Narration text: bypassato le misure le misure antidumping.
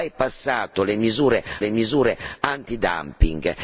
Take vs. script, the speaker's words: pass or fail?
pass